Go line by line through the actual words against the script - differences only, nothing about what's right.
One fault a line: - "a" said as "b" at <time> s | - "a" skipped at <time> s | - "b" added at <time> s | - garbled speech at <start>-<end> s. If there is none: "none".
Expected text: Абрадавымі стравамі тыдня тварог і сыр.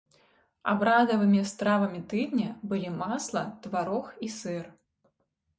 - "былі масла" added at 2.7 s